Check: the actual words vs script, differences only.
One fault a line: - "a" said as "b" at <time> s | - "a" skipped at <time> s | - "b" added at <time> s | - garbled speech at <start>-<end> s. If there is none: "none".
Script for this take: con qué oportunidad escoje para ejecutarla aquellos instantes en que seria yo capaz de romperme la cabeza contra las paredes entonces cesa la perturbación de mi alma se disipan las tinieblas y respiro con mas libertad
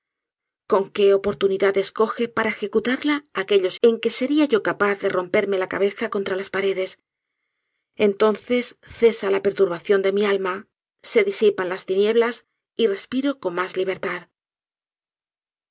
- "instantes" skipped at 3.8 s